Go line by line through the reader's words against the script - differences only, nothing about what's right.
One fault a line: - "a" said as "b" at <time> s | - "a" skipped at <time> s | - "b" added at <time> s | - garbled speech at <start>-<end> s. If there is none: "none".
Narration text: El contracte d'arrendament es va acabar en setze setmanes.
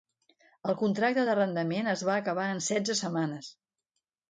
none